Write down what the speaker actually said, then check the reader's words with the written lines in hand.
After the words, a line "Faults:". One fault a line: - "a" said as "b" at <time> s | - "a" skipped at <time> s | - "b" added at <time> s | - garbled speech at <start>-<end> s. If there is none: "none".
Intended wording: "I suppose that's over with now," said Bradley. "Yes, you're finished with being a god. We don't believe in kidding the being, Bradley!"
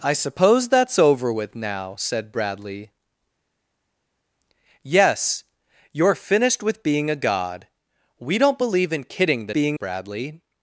"I suppose that's over with now," said Bradley. "Yes, you're finished with being a god. We don't believe in kidding the being, Bradley!"
Faults:
none